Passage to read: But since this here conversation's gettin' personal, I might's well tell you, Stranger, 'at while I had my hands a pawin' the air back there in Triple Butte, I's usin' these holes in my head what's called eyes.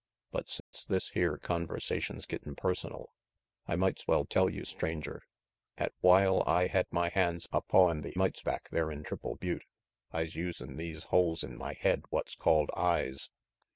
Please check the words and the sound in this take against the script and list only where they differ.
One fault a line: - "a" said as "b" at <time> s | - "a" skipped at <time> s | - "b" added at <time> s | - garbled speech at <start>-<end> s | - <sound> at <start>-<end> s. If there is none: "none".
- dropout at 0.6-0.7 s
- "air" said as "might's" at 8.1 s